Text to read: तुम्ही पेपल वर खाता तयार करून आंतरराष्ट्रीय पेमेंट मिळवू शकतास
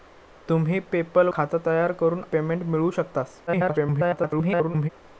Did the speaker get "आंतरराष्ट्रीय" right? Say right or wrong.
wrong